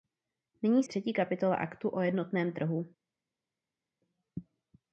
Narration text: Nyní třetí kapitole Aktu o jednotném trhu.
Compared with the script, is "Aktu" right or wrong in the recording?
right